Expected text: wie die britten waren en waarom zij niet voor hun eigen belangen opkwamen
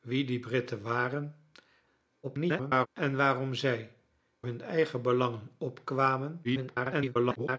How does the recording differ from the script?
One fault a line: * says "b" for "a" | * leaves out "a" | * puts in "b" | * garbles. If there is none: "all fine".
* garbles
* leaves out "niet voor"
* garbles